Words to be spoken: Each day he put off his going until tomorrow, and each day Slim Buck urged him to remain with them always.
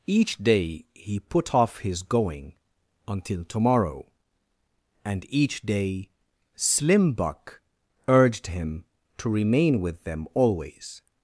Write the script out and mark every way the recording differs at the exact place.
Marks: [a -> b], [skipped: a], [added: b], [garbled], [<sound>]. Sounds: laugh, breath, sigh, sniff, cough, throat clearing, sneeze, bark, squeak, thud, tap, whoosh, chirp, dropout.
Each day he put off his going until tomorrow, and each day Slim Buck urged him to remain with them always.